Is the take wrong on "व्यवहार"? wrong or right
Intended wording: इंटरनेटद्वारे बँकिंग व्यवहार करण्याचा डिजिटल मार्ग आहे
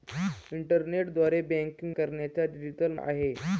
wrong